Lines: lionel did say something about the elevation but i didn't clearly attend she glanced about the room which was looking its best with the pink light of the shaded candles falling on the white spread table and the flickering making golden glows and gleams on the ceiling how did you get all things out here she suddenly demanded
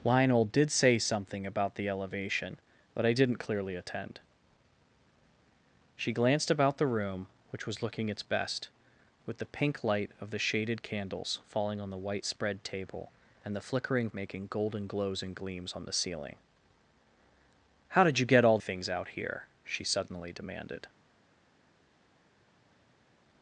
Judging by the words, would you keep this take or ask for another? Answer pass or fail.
pass